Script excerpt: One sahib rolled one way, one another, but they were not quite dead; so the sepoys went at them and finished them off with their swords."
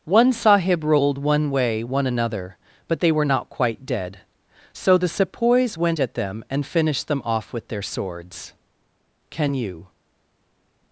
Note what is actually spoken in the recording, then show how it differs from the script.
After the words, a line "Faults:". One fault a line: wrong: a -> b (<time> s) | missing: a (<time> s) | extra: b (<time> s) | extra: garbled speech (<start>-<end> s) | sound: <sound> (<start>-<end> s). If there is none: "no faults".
One sahib rolled one way, one another, but they were not quite dead; so the sepoys went at them and finished them off with their swords." Can you
Faults:
extra: Can you (9.3 s)